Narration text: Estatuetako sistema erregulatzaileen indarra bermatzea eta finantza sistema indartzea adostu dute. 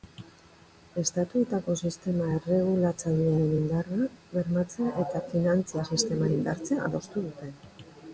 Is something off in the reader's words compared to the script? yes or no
no